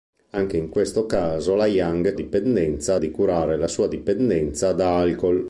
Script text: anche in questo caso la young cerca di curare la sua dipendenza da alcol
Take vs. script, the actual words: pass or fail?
fail